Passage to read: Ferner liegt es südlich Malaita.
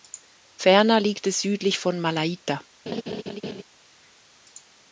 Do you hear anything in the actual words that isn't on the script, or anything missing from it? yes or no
yes